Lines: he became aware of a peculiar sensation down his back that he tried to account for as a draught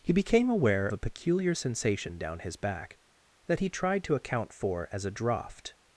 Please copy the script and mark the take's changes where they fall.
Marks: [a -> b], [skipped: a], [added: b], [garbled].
he became aware [skipped: of] a peculiar sensation down his back that he tried to account for as a draught